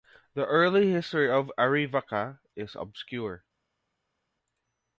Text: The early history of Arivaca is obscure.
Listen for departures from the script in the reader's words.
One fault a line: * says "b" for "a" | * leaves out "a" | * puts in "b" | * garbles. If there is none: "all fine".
all fine